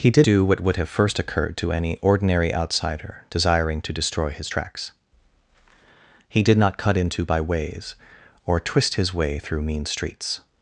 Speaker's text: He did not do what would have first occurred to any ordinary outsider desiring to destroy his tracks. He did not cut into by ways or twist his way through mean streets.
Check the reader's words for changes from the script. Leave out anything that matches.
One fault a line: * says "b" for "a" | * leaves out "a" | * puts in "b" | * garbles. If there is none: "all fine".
* leaves out "not"